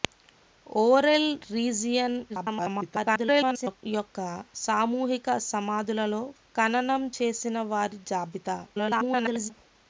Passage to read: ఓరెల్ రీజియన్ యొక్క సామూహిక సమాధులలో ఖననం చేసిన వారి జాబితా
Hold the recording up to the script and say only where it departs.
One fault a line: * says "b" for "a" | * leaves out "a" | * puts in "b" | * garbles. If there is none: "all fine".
* garbles
* garbles